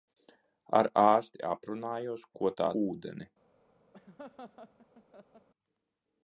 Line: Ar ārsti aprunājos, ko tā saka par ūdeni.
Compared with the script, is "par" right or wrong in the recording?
wrong